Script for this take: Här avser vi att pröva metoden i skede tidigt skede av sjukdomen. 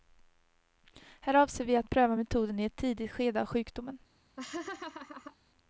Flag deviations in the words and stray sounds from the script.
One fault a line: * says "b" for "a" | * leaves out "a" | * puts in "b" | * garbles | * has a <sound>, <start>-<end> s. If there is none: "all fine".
* says "ett" for "skede"
* has a laugh, 4.4-5.4 s